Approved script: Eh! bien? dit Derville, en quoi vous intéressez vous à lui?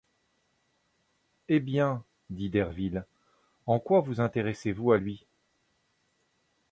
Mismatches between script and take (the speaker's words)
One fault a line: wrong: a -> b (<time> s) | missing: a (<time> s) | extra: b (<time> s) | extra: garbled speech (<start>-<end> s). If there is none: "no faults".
no faults